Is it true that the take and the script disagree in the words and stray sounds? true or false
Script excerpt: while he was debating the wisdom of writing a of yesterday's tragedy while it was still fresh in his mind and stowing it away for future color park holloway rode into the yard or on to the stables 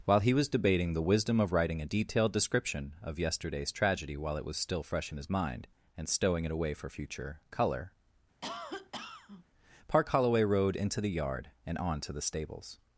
true